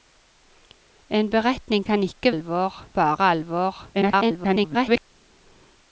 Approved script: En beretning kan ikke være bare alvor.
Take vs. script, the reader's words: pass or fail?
fail